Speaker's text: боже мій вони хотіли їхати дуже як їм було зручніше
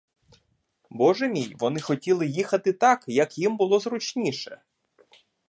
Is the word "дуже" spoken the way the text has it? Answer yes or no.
no